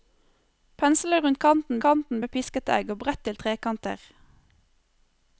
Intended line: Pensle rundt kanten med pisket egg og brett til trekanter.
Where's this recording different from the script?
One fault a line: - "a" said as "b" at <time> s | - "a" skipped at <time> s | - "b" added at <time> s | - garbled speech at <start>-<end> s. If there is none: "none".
- "kanten" added at 1.8 s